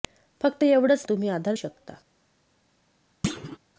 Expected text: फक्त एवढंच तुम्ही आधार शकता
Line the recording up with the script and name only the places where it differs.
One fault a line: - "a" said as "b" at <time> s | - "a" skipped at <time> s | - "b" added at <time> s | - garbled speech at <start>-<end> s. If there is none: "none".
none